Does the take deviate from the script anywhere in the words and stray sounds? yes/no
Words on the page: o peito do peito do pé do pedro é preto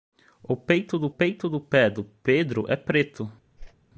yes